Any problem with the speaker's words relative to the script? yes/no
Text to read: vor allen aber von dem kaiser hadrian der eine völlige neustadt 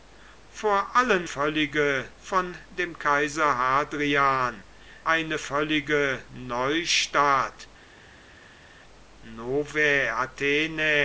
yes